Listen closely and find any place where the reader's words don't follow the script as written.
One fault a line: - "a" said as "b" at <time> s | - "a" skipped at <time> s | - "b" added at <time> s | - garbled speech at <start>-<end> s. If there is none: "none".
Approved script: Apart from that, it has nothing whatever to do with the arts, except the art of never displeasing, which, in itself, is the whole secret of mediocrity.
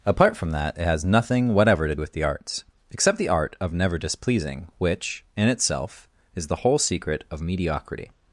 - "do" skipped at 1.9 s